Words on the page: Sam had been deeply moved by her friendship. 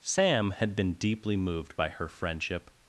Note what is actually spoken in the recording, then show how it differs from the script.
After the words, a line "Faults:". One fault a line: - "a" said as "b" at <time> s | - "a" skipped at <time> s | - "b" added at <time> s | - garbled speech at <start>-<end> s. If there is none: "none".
Sam had been deeply moved by her friendship.
Faults:
none